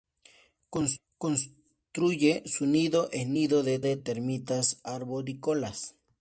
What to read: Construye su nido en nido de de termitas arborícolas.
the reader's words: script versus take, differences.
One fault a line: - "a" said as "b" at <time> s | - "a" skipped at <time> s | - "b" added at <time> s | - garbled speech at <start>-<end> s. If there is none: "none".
none